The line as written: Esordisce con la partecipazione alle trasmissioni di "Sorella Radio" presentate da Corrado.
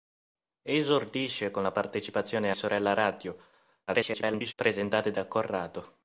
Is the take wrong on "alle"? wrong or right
wrong